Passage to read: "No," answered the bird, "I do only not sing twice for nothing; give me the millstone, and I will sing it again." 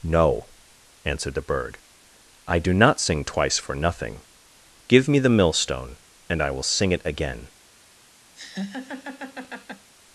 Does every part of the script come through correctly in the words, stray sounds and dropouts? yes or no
no